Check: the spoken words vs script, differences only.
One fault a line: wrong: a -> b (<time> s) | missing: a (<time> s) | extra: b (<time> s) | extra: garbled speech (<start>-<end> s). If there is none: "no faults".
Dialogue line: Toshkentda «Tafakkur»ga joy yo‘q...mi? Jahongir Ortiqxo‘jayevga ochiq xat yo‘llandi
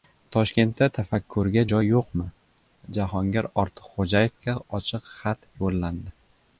no faults